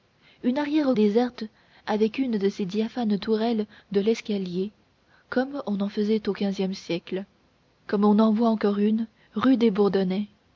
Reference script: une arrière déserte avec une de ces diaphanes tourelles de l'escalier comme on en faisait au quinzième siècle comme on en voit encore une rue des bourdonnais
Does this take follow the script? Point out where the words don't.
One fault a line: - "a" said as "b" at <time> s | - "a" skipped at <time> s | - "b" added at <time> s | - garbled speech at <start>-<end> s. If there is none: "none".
none